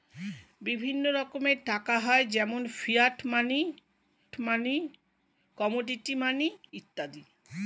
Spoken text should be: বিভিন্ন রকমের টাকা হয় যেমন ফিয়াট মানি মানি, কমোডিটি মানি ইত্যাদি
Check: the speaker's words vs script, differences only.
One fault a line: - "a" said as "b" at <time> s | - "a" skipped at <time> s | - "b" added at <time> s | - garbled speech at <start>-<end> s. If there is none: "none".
none